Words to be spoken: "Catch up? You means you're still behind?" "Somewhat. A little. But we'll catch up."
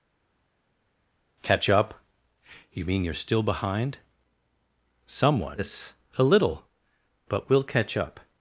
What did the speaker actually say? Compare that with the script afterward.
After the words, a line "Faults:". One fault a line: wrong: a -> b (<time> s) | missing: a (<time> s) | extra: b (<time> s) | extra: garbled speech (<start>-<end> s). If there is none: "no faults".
"Catch up? You mean you're still behind?" "Somewhat. A little. But we'll catch up."
Faults:
wrong: means -> mean (2.8 s)